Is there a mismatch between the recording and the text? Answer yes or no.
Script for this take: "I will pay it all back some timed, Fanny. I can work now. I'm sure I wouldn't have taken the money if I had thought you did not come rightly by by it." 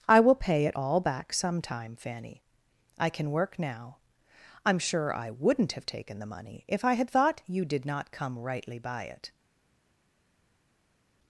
yes